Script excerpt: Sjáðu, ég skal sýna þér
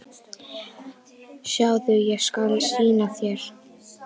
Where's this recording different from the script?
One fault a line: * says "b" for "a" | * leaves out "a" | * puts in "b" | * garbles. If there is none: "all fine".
all fine